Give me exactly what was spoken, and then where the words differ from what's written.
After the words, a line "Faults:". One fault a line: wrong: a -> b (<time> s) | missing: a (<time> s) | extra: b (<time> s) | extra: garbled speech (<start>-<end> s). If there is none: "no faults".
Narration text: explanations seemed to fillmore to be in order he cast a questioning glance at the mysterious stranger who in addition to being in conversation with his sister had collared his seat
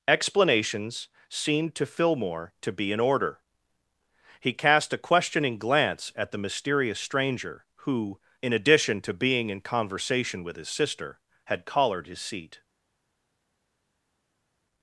explanations seemed to fillmore to be in order he cast a questioning glance at the mysterious stranger who in addition to being in conversation with his sister had collared his seat
Faults:
no faults